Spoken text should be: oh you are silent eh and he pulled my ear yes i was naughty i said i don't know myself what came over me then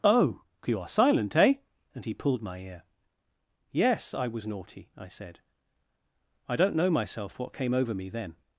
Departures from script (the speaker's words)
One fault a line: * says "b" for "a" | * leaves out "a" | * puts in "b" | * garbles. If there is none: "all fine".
all fine